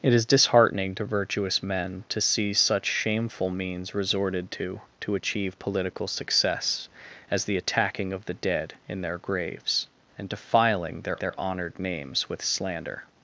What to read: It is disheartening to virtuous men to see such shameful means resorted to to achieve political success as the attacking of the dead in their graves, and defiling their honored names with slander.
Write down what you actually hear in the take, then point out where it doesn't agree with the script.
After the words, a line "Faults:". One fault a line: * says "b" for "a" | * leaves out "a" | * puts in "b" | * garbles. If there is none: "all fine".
It is disheartening to virtuous men to see such shameful means resorted to to achieve political success as the attacking of the dead in their graves, and defiling their their honored names with slander.
Faults:
* puts in "their"